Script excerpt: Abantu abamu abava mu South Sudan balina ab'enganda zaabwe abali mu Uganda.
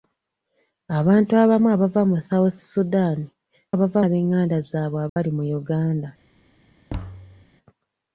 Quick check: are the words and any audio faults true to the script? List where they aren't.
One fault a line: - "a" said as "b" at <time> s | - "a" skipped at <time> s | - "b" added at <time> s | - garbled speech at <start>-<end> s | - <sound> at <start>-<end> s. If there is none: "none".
- "balina" said as "abava" at 3.7 s
- dropout at 5.1-5.2 s
- thud at 6.9-7.5 s